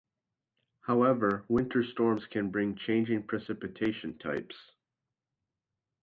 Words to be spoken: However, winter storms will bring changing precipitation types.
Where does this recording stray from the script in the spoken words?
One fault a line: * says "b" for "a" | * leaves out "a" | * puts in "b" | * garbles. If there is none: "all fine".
* says "can" for "will"